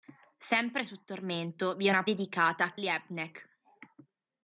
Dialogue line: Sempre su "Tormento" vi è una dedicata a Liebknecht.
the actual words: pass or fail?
pass